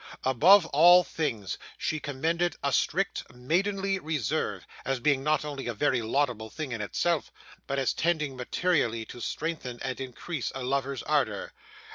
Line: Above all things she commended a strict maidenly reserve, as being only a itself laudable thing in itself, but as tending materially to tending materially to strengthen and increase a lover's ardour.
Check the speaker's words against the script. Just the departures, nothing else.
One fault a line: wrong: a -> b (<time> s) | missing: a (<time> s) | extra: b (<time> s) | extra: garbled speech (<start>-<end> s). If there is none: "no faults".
extra: not (5.2 s)
wrong: itself -> very (5.8 s)
missing: tending materially to (9.2 s)